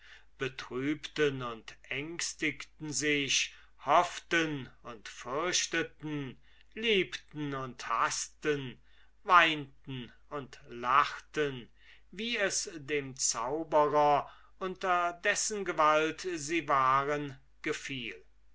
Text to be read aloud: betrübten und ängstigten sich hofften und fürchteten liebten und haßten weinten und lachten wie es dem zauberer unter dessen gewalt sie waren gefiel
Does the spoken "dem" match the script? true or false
true